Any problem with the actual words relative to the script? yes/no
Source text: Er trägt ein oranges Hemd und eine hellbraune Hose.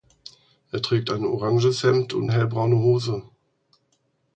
yes